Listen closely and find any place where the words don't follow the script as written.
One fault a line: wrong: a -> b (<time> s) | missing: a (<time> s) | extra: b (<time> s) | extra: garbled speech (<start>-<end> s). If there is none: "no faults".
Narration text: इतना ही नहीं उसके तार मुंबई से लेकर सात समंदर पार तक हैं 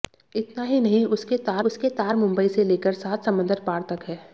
extra: उसके तार (1.6 s)